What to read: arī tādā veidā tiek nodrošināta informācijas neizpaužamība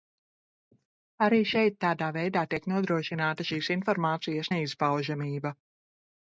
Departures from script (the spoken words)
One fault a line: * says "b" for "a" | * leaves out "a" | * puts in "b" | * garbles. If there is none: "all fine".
* puts in "šeit"
* puts in "šīs"